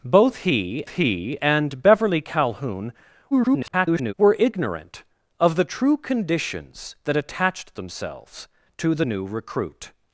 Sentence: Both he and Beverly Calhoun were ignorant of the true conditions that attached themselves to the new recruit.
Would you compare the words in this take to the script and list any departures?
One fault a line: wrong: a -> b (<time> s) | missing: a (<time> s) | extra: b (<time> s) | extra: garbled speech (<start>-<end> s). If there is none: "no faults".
extra: he (0.9 s)
extra: garbled speech (3.3-4.1 s)